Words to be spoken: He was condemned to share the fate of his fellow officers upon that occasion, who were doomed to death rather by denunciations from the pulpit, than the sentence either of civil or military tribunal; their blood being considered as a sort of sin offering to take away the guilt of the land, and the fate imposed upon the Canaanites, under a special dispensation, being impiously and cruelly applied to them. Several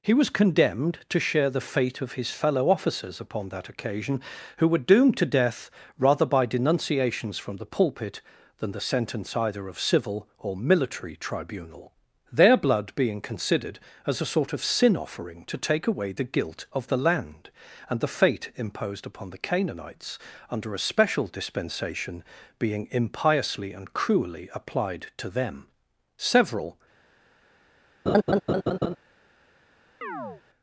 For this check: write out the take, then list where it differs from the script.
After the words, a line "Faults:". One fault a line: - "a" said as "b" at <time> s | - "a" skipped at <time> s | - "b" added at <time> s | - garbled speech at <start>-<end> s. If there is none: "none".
He was condemned to share the fate of his fellow officers upon that occasion, who were doomed to death rather by denunciations from the pulpit, than the sentence either of civil or military tribunal; their blood being considered as a sort of sin offering to take away the guilt of the land, and the fate imposed upon the Canaanites, under a special dispensation, being impiously and cruelly applied to them. Several
Faults:
none